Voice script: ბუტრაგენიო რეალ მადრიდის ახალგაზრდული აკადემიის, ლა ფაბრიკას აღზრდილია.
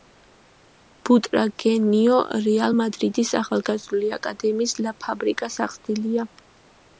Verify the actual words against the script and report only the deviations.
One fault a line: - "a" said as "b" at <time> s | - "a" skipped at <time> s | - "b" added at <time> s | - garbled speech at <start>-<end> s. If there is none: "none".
none